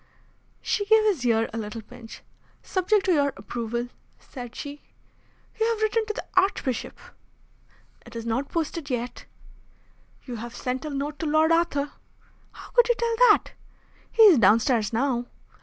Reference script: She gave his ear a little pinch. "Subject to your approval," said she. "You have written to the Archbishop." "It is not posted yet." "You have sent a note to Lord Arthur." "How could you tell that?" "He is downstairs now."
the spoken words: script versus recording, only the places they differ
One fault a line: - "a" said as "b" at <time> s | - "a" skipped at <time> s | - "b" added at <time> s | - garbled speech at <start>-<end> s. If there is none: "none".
none